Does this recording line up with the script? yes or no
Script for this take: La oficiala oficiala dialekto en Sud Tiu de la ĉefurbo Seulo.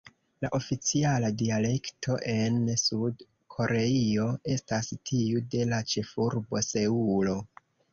no